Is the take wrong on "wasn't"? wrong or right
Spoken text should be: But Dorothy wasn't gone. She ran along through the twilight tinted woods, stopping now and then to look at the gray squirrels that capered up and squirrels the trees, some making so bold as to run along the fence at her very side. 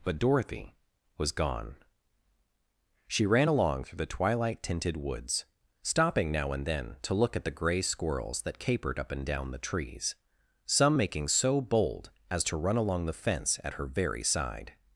wrong